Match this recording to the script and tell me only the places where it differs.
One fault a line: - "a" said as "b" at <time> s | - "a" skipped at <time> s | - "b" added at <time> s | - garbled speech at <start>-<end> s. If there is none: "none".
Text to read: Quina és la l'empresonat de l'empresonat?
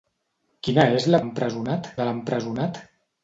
none